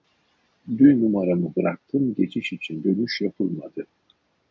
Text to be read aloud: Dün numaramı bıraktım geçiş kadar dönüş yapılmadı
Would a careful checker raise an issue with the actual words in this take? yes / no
yes